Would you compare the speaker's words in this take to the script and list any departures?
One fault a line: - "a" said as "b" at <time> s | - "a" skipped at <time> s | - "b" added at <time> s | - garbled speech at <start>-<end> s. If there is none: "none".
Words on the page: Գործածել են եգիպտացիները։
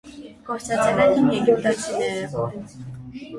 - "հին" added at 1.2 s